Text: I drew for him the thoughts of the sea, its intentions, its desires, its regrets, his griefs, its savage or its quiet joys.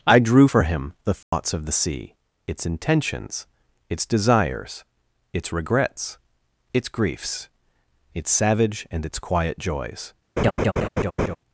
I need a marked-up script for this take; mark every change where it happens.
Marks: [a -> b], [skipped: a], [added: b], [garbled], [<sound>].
I drew for him the thoughts [dropout] of the sea, its intentions, its desires, its regrets, [his -> its] griefs, its savage [or -> and] its quiet joys. [laugh]